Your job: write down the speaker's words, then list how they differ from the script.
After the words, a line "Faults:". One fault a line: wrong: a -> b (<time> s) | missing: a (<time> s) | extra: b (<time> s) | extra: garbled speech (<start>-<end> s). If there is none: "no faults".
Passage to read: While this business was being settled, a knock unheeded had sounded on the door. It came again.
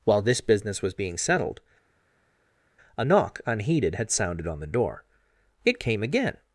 While this business was being settled, a knock unheeded had sounded on the door. It came again.
Faults:
no faults